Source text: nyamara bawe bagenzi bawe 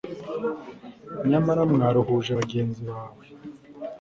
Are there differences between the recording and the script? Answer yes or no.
yes